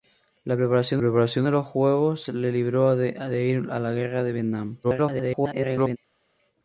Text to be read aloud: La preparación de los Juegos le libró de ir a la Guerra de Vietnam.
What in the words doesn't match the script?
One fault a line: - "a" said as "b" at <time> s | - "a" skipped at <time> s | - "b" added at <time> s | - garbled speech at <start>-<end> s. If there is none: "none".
- "preparación" added at 1.0 s
- garbled speech at 4.8-6.0 s